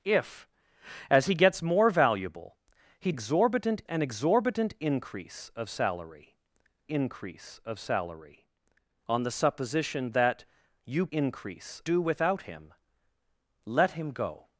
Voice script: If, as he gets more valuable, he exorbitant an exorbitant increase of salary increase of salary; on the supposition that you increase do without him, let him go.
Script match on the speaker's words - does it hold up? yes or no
yes